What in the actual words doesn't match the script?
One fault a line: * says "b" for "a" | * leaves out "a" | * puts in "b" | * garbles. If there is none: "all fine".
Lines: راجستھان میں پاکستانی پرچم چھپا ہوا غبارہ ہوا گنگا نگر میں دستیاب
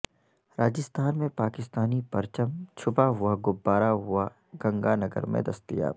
all fine